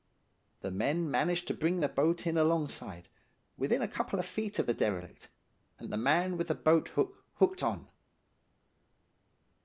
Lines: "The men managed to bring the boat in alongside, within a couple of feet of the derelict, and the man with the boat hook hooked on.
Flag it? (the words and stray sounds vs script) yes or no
no